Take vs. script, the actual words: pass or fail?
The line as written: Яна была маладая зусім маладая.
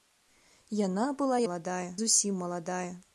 pass